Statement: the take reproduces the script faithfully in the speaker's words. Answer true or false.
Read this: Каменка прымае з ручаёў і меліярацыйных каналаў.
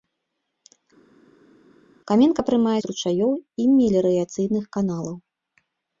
true